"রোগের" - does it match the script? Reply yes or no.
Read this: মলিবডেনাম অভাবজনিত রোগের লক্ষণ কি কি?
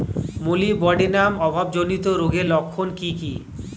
yes